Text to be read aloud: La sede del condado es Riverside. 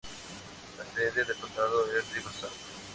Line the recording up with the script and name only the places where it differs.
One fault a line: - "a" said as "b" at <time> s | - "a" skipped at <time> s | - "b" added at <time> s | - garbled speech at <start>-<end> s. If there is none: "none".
none